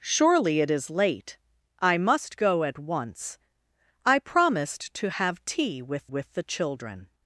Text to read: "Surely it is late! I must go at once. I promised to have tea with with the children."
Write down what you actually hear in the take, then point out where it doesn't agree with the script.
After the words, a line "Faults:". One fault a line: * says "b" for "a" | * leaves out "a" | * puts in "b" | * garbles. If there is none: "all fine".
"Surely it is late! I must go at once. I promised to have tea with with the children."
Faults:
all fine